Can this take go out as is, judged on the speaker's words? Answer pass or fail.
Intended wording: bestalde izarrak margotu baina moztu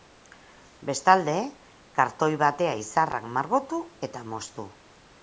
fail